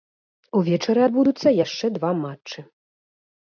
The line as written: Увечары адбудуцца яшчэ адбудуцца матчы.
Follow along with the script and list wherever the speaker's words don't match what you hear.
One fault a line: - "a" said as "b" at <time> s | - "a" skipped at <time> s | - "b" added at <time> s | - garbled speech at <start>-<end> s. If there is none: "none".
- "адбудуцца" said as "два" at 2.0 s